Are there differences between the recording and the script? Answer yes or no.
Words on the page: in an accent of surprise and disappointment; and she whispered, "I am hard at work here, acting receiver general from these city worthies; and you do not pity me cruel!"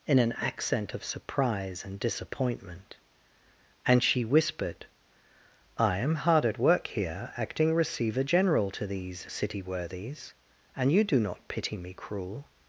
yes